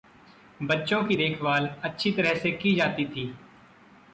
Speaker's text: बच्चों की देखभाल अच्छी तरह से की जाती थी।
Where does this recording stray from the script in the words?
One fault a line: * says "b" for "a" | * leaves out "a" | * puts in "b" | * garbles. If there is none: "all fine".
all fine